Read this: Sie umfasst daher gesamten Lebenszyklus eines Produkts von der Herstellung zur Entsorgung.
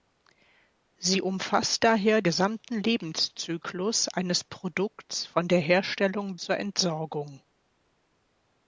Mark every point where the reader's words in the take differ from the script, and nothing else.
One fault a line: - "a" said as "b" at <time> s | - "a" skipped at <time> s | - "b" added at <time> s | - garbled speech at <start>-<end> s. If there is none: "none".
none